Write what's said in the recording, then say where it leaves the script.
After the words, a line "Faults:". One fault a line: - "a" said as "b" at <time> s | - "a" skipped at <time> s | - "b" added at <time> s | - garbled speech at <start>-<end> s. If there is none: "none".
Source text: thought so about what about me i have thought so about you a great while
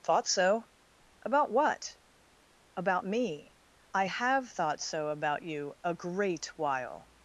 thought so about what about me i have thought so about you a great while
Faults:
none